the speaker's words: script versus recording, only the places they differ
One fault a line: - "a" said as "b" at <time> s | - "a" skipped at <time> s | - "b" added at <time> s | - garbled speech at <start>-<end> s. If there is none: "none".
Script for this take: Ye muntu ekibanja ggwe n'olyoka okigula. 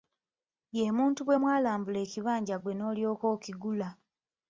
- "bwe mwalambula" added at 1.2 s